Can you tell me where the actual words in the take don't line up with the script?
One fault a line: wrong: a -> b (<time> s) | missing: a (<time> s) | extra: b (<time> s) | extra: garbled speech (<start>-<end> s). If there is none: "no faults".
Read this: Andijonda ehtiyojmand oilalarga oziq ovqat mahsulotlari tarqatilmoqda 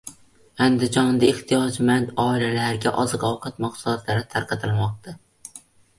no faults